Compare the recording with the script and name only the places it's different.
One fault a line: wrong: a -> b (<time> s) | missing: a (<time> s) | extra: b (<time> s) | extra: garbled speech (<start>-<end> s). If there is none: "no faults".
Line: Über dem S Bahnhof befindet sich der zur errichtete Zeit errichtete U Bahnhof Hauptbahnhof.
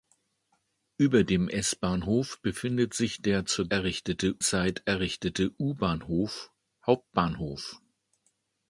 no faults